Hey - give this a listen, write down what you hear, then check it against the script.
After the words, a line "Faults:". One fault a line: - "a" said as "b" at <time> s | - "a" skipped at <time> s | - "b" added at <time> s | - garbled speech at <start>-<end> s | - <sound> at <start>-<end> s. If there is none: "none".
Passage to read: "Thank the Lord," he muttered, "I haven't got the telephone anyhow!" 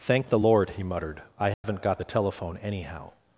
"Thank the Lord," he muttered, "I haven't got the telephone anyhow!"
Faults:
- dropout at 1.5-1.6 s